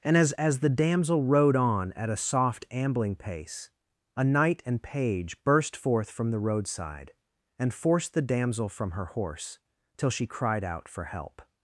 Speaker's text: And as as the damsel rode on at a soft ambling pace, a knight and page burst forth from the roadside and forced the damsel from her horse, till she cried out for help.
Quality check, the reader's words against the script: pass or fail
pass